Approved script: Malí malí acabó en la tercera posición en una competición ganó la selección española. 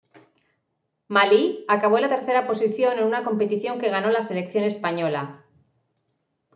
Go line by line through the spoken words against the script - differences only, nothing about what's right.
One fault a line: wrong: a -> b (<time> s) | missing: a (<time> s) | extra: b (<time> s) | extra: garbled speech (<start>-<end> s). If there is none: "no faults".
missing: malí (1.6 s)
extra: que (3.8 s)